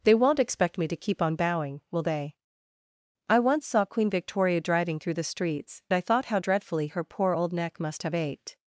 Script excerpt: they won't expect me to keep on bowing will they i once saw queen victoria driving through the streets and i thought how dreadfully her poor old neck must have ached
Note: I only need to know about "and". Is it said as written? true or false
false